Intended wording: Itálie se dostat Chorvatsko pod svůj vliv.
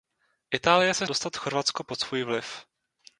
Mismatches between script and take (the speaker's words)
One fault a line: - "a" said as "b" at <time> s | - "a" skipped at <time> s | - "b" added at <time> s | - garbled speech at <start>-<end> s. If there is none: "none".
none